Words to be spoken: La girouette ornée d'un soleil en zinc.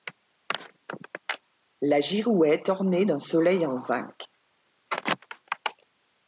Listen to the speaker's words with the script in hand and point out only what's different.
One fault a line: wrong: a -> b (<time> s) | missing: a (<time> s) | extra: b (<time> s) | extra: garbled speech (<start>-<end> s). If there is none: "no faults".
no faults